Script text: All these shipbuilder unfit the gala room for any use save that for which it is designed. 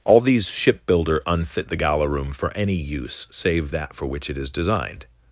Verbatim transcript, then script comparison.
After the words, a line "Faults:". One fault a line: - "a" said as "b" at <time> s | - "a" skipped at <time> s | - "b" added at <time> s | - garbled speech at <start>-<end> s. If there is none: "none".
All these shipbuilder unfit the gala room for any use save that for which it is designed.
Faults:
none